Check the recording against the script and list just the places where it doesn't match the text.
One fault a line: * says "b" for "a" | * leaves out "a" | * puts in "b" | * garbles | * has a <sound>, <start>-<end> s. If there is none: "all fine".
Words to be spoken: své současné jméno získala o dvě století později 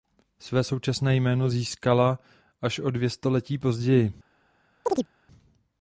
* puts in "až"
* has a chirp, 4.9-5.1 s